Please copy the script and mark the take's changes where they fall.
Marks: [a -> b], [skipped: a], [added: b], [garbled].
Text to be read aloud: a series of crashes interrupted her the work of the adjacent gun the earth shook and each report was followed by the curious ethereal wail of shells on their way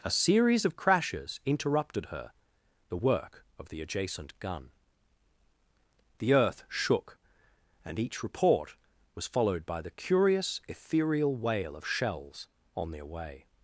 a series of crashes interrupted her the work of the adjacent gun the earth shook and each report was followed by the curious ethereal wail of shells on their way